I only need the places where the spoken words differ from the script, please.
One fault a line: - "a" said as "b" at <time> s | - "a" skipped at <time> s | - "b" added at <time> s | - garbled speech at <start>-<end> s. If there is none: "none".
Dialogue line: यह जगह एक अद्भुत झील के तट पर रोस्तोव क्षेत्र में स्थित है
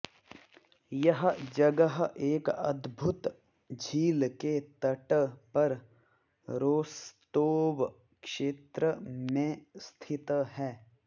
none